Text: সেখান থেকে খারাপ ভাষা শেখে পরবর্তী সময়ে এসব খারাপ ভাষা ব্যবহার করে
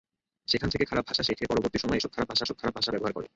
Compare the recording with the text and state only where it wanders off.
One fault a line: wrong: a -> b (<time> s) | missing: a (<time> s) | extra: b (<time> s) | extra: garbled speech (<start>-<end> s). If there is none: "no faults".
extra: এসব খারাপ ভাষা (2.4 s)